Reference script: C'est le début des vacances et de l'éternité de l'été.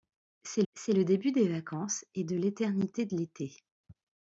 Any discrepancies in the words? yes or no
yes